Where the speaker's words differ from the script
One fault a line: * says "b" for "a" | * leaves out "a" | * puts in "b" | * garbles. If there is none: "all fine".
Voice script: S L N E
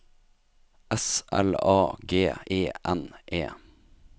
* puts in "A G E"